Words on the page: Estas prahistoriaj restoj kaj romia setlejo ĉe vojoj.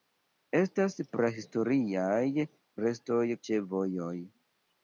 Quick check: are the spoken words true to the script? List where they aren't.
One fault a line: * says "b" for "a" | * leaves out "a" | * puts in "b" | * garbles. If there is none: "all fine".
* leaves out "kaj romia setlejo"